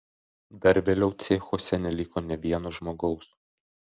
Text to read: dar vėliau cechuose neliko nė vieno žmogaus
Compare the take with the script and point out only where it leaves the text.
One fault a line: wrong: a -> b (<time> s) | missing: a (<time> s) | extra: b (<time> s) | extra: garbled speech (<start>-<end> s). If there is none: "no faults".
no faults